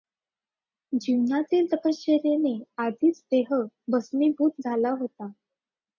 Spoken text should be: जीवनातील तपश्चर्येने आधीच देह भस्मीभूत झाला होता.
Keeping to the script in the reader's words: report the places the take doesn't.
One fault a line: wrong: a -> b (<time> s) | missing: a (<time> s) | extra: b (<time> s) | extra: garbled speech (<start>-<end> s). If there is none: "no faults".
no faults